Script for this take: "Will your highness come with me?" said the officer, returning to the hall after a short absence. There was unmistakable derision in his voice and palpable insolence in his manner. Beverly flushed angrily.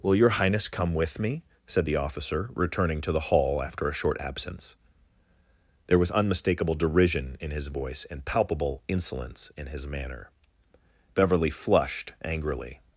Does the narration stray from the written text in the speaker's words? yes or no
no